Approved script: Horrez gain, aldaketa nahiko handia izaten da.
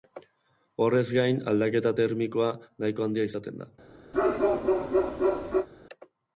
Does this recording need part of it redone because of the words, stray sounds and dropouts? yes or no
yes